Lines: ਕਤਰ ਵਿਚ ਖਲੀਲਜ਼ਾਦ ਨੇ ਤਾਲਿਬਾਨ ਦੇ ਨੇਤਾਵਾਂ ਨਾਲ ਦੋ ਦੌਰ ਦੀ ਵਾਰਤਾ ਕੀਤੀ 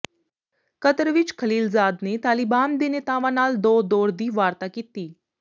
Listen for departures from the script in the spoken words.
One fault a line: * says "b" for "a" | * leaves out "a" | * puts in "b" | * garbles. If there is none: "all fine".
all fine